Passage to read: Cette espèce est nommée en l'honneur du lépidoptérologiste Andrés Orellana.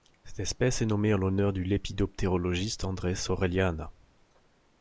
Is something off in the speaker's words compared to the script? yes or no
no